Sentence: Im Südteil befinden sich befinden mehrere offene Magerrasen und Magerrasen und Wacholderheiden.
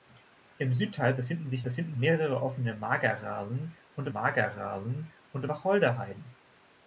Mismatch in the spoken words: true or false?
false